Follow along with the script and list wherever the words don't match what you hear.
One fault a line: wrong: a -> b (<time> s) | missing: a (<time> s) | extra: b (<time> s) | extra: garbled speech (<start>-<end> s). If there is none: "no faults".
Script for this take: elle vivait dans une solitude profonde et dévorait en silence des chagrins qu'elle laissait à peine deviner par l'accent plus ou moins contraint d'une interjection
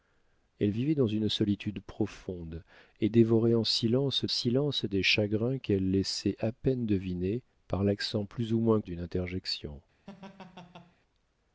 extra: silence (4.3 s)
missing: contraint (8.8 s)